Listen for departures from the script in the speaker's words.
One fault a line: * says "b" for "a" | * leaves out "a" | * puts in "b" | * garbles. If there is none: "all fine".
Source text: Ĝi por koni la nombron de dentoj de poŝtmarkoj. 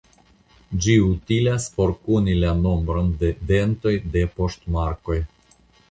* puts in "utilas"